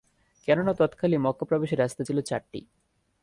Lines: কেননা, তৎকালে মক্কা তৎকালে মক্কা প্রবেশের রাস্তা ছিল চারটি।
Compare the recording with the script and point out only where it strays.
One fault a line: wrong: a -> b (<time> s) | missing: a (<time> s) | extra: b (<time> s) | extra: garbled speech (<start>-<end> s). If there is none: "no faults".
missing: তৎকালে মক্কা (1.4 s)